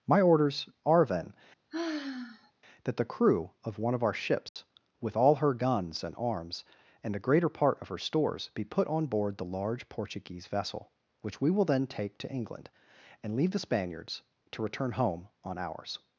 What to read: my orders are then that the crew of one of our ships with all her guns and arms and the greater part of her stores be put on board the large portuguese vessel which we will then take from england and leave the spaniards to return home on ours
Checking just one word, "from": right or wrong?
wrong